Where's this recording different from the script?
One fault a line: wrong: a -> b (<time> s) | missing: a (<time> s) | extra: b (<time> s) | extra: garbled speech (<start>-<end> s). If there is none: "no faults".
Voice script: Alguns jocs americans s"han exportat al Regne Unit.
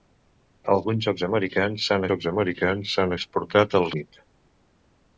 extra: jocs americans s"han (2.1 s)
missing: Regne (3.9 s)